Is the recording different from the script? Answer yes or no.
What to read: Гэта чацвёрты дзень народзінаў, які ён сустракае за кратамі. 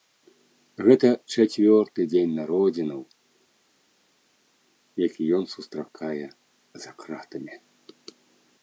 no